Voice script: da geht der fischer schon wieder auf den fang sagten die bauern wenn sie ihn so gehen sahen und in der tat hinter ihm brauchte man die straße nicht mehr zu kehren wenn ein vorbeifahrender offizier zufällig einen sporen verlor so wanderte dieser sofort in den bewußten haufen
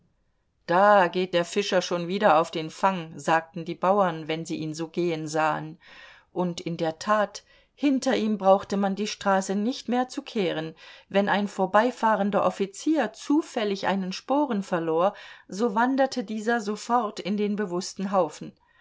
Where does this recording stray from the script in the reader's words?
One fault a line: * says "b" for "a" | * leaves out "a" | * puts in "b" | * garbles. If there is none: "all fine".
all fine